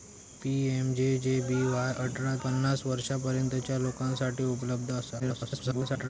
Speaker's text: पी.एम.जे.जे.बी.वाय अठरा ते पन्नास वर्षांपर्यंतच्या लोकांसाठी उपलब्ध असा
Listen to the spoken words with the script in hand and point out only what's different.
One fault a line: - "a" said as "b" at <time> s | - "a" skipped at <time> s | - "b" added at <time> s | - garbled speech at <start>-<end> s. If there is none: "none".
- "ते" skipped at 2.4 s
- garbled speech at 5.2-6.1 s